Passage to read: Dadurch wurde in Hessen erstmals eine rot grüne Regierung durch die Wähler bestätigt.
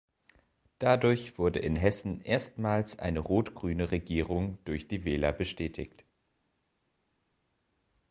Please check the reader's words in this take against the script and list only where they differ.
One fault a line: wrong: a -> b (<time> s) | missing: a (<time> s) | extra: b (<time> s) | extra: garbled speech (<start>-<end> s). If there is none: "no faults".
no faults